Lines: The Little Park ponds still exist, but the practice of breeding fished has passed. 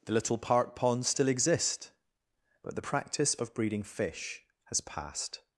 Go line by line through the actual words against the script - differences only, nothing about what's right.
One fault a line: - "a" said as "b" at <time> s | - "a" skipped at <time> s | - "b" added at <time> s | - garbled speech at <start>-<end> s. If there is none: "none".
- "fished" said as "fish" at 3.8 s